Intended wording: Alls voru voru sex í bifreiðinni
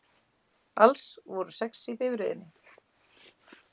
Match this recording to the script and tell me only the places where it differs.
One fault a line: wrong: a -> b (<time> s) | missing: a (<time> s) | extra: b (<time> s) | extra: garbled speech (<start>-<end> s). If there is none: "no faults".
missing: voru (1.6 s)